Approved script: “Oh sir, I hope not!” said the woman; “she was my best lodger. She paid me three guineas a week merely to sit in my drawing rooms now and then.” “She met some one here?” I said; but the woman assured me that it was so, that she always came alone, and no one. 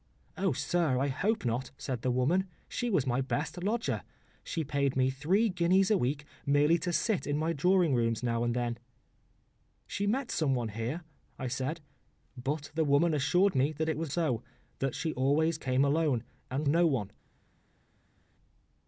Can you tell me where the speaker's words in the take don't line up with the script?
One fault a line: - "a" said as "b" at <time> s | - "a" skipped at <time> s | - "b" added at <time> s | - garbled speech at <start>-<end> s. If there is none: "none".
none